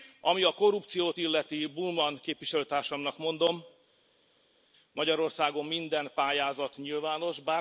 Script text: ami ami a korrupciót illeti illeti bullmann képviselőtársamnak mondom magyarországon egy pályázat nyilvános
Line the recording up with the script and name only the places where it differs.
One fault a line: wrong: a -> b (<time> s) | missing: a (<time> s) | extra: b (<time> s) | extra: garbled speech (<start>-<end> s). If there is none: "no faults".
missing: ami (0.4 s)
missing: illeti (1.7 s)
wrong: egy -> minden (5.7 s)